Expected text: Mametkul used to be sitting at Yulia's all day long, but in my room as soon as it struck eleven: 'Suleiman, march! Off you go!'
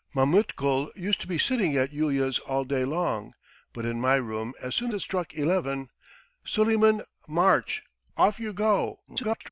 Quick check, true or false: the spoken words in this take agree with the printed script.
false